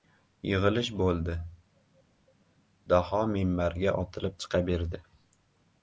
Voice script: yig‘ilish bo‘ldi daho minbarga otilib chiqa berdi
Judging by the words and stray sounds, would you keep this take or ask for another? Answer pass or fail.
pass